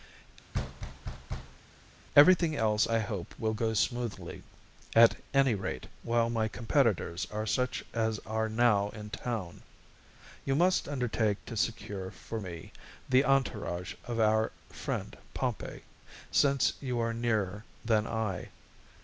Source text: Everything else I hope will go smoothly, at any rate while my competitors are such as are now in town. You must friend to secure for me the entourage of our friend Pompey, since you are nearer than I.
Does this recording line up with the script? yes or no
no